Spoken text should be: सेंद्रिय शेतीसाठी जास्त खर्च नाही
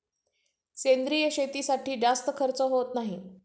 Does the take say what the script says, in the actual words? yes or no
no